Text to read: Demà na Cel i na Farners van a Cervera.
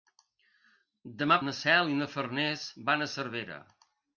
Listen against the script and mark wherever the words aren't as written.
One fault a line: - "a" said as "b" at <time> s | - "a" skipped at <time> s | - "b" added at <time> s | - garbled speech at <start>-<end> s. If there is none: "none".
none